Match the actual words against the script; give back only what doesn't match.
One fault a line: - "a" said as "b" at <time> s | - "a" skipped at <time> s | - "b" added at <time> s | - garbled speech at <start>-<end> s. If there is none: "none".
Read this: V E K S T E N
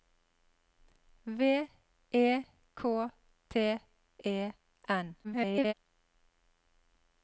- "S" skipped at 3.1 s
- garbled speech at 5.2-5.7 s